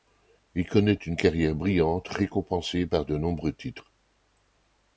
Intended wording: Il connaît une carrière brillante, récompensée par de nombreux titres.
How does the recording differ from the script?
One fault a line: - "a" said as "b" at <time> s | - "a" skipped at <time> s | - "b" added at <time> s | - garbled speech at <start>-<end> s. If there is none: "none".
none